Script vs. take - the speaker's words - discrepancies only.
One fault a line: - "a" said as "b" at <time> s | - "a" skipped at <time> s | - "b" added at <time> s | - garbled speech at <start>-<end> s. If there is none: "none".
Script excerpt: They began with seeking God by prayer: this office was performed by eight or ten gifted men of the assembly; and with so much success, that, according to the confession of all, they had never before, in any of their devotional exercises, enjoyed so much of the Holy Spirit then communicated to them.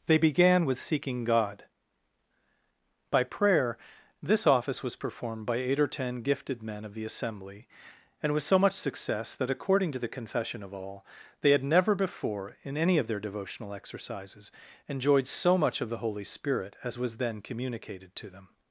- "as was" added at 16.8 s